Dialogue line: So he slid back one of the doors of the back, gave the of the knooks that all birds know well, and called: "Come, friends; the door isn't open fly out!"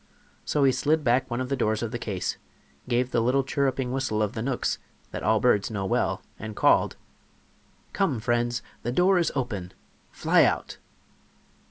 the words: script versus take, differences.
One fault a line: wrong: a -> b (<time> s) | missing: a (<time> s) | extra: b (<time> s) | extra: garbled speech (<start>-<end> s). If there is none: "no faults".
wrong: back -> case (2.0 s)
extra: little chirruping whistle (3.2 s)
wrong: isn't -> is (9.2 s)